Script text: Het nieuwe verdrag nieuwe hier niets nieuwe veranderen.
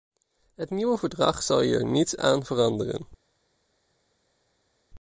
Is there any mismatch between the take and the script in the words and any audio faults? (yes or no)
yes